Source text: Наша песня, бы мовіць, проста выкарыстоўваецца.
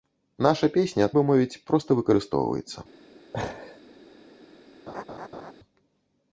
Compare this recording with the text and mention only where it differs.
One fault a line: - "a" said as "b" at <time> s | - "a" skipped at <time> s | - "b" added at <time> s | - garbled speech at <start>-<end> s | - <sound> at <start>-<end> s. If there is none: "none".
- laugh at 3.3-3.8 s
- laugh at 4.9-5.5 s